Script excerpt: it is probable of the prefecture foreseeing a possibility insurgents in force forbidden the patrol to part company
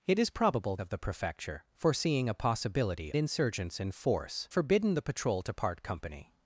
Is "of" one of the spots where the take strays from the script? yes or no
no